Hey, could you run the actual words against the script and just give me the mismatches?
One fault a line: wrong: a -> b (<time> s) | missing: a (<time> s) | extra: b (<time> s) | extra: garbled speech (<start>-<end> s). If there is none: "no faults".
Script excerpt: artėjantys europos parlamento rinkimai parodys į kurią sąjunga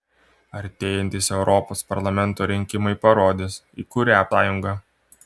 no faults